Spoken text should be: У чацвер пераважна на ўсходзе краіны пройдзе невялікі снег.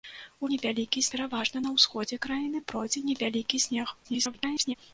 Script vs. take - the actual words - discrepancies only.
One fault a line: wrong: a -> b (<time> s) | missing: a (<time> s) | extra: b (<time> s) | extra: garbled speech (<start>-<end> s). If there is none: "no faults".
wrong: чацвер -> невялікі (0.5 s)
extra: garbled speech (4.0-4.7 s)